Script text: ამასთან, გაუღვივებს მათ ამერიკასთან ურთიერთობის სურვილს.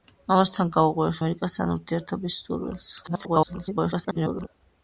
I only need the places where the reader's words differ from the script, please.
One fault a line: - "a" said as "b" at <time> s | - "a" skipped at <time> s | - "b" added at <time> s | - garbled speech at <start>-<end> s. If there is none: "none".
- "მათ" skipped at 1.2 s
- garbled speech at 3.0-4.5 s